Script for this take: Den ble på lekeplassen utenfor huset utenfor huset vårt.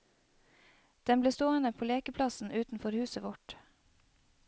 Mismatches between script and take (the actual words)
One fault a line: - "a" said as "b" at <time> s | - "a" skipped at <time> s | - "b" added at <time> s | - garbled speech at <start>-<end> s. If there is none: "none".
- "stående" added at 1.3 s
- "utenfor huset" skipped at 3.2 s